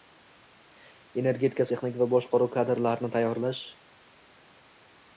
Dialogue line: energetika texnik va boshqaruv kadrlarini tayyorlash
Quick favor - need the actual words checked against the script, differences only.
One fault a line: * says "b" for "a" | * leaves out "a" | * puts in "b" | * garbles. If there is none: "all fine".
all fine